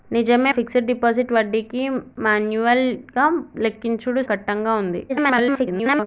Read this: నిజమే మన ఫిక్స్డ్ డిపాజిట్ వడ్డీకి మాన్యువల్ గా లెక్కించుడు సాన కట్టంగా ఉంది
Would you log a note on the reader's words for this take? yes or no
yes